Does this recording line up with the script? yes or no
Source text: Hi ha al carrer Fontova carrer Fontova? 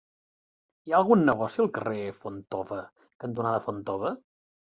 no